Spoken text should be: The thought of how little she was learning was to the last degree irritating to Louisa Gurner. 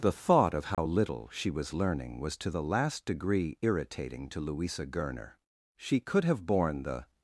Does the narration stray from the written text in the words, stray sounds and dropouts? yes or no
yes